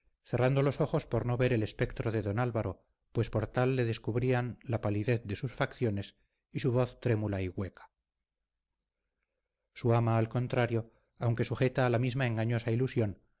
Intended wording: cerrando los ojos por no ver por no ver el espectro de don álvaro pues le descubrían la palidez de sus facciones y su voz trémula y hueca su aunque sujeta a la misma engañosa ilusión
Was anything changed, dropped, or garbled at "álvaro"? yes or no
no